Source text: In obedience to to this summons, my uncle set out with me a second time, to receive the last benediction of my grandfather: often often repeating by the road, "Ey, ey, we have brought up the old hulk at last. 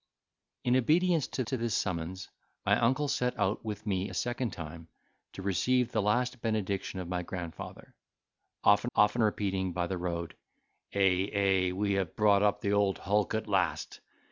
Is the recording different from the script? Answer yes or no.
no